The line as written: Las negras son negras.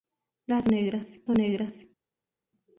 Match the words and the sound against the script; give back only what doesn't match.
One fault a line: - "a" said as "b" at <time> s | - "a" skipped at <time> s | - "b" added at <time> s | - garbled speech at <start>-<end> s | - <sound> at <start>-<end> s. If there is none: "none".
none